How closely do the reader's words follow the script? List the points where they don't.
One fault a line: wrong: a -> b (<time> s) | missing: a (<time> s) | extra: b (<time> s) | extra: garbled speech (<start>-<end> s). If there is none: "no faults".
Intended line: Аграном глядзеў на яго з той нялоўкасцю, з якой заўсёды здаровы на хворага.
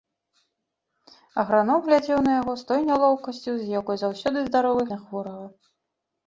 no faults